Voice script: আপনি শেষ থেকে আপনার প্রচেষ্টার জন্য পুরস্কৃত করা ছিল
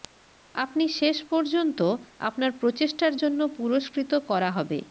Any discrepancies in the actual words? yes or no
yes